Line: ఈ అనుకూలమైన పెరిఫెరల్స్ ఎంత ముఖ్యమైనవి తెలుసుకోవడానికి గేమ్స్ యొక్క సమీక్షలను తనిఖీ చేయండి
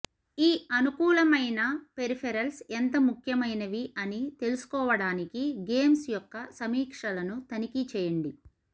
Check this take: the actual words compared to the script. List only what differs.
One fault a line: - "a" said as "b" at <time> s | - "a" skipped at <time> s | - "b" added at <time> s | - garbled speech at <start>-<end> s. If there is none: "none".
- "అని" added at 4.0 s